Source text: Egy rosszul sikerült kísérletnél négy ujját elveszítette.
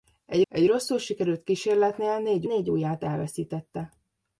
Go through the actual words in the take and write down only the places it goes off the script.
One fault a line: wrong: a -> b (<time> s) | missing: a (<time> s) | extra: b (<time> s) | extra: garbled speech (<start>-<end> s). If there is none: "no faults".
extra: egy (0.5 s)
extra: négy (2.4 s)